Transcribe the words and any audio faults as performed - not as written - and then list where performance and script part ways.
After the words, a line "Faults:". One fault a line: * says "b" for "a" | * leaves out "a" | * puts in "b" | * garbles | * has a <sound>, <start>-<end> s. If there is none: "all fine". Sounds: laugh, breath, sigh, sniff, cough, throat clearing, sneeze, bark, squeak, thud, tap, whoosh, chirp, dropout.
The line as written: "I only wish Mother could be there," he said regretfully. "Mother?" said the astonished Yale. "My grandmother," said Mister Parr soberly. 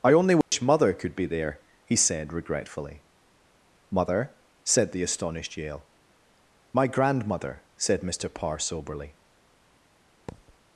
"I only wish Mother could be there," he said regretfully. "Mother?" said the astonished Yale. "My grandmother," said Mister Parr soberly.
Faults:
* has a dropout, 0.4-0.5 s
* has a thud, 10.3-10.6 s